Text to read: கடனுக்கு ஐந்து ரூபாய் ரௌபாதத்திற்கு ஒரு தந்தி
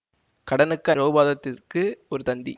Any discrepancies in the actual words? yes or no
yes